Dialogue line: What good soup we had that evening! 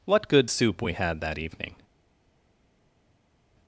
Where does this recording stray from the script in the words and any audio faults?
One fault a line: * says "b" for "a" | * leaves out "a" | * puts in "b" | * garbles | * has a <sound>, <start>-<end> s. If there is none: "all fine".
all fine